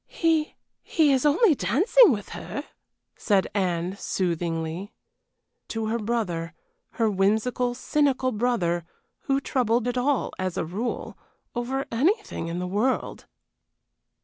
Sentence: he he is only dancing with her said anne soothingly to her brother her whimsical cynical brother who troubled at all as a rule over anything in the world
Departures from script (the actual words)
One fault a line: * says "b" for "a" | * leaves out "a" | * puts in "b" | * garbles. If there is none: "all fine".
all fine